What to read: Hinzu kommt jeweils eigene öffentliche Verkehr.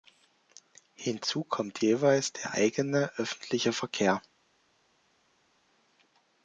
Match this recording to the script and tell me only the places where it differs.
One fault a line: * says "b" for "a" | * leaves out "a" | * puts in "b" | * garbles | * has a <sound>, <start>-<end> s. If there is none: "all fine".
* puts in "der"